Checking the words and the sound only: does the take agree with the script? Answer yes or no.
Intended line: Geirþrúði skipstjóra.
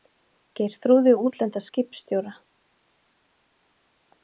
no